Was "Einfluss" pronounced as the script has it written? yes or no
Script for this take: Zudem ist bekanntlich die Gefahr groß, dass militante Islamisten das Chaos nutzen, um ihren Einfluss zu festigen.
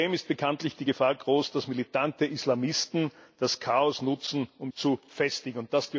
no